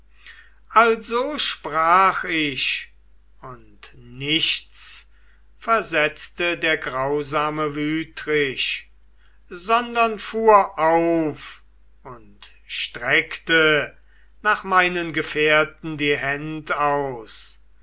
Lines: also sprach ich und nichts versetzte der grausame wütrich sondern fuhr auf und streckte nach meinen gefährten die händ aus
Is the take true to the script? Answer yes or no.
yes